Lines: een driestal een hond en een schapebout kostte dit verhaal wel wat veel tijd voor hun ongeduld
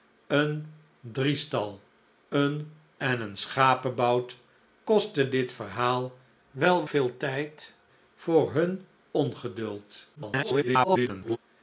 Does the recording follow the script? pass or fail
fail